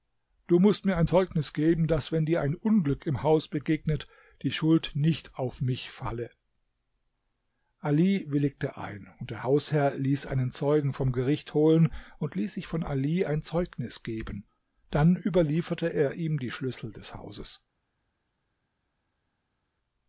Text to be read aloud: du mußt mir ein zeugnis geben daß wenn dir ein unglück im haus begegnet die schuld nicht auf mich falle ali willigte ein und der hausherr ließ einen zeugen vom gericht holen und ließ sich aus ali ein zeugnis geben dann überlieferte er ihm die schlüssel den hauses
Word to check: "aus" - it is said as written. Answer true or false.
false